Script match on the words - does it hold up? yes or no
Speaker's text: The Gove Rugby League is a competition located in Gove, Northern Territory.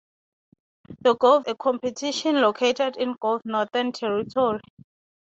no